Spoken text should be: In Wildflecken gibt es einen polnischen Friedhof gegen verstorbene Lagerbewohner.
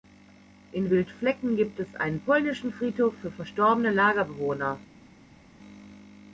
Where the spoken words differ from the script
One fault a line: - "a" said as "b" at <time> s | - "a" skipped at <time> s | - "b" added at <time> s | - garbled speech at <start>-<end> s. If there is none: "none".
- "gegen" said as "für" at 3.2 s